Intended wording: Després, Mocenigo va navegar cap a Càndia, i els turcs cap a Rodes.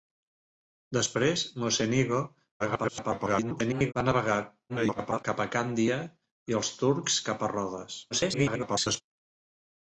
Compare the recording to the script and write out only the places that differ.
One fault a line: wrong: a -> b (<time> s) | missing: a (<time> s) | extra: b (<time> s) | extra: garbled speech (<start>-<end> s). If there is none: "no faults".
extra: garbled speech (2.6-3.9 s)
extra: garbled speech (4.7-5.2 s)
extra: garbled speech (8.1-9.0 s)